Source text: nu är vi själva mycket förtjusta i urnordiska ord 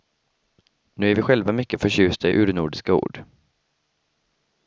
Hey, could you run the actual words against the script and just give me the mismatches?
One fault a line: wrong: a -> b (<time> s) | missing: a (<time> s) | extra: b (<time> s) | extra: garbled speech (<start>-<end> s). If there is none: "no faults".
no faults